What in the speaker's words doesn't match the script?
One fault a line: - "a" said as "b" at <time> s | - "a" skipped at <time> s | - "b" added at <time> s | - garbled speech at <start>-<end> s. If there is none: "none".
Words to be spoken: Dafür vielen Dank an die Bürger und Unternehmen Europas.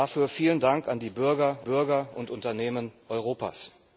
- "Bürger" added at 1.6 s